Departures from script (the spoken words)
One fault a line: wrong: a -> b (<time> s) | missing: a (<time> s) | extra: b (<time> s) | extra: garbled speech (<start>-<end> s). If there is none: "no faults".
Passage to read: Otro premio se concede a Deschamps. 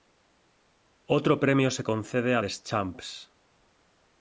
no faults